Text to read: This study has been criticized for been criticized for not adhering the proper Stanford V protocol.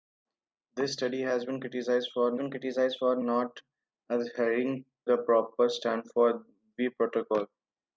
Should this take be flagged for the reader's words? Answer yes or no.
no